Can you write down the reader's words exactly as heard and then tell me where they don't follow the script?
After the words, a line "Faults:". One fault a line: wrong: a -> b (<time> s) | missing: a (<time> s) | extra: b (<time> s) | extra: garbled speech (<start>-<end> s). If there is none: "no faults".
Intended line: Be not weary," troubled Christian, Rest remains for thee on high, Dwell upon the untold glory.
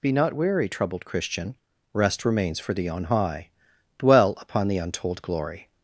Be not weary," troubled Christian, Rest remains for thee on high, Dwell upon the untold glory.
Faults:
no faults